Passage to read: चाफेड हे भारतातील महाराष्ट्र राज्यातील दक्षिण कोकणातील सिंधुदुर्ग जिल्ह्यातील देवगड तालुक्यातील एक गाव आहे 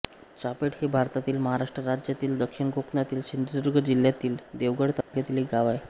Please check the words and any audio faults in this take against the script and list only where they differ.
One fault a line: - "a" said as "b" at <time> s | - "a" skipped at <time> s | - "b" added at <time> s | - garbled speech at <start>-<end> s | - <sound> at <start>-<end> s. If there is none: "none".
- dropout at 5.0-5.1 s